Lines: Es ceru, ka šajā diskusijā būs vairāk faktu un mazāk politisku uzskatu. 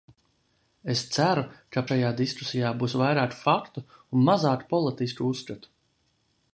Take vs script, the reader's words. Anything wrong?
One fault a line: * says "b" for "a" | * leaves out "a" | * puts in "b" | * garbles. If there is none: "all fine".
all fine